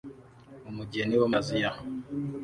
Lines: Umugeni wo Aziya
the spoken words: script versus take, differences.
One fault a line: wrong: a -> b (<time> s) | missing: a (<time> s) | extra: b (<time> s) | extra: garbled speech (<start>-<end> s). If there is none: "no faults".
no faults